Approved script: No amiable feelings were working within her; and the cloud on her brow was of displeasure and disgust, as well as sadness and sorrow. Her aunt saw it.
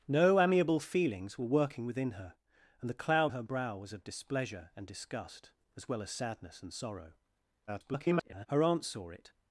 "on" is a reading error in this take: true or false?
true